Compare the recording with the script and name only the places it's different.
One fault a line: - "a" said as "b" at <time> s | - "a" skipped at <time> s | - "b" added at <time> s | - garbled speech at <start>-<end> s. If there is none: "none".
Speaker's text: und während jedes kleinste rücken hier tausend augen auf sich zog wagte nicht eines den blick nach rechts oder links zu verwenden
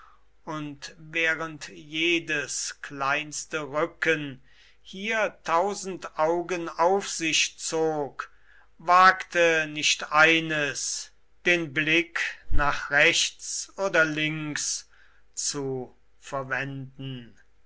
none